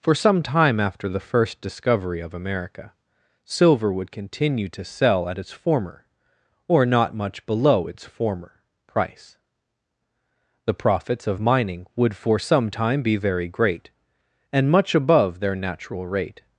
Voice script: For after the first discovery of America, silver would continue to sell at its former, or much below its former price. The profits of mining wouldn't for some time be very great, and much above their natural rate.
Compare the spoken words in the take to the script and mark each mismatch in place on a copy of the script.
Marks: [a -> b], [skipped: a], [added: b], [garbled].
For [added: some time] after the first discovery of America, silver would continue to sell at its former, or [added: not] much below its former price. The profits of mining [wouldn't -> would] for some time be very great, and much above their natural rate.